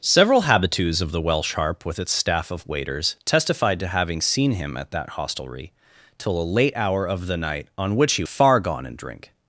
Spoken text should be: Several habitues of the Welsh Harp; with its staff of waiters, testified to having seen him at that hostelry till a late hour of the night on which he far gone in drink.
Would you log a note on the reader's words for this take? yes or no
no